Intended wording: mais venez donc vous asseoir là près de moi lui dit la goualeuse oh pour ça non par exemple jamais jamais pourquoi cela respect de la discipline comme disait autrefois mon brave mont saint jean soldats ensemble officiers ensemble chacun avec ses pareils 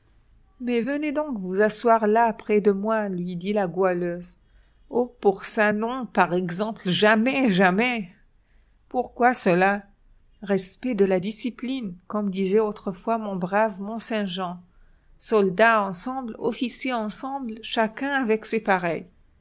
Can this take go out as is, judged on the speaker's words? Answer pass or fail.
pass